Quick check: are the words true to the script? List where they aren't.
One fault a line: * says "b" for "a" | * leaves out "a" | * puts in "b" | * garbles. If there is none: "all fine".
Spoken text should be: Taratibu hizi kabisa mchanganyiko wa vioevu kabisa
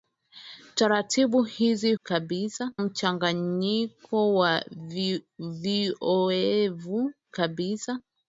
all fine